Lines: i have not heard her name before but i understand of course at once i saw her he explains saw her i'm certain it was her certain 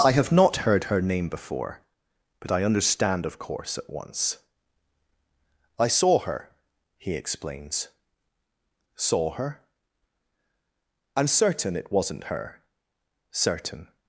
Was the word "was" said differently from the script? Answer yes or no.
yes